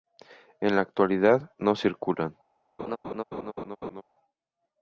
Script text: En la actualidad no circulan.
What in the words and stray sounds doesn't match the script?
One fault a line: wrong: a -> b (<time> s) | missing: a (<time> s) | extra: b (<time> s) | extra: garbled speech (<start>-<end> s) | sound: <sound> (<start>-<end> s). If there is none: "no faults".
sound: laugh (2.8-4.0 s)